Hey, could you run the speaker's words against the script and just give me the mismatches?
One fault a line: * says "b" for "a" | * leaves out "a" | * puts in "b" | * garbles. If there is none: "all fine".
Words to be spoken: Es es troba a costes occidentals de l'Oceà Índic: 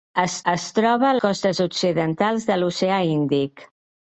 all fine